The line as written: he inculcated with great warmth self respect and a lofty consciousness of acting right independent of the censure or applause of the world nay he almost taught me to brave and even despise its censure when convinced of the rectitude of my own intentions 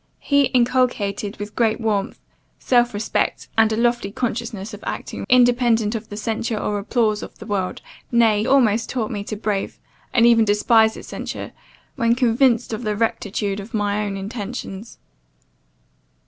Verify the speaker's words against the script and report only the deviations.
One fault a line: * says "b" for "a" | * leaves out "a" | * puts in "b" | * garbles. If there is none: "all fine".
* leaves out "right"
* leaves out "he"